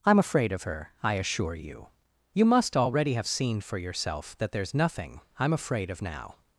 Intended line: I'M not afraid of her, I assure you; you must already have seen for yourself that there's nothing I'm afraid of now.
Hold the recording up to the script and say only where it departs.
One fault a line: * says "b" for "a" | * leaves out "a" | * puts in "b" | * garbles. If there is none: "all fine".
* leaves out "not"